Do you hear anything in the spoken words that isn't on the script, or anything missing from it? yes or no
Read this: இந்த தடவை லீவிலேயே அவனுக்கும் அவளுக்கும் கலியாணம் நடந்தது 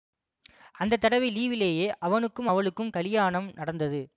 yes